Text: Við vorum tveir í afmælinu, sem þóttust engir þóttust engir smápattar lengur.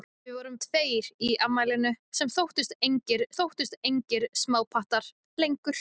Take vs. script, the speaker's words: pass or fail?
pass